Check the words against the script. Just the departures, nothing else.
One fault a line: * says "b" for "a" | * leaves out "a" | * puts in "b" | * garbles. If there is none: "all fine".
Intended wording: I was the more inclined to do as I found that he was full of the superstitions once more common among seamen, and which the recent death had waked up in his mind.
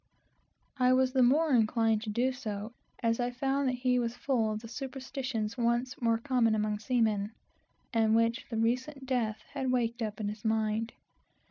* puts in "so"